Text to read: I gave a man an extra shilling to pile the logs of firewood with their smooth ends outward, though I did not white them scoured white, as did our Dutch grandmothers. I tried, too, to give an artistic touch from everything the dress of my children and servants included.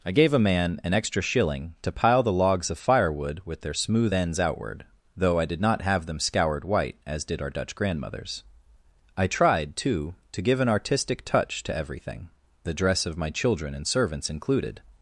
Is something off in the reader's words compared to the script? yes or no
yes